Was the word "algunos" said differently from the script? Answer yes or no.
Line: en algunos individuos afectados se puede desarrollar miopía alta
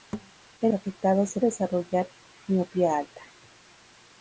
yes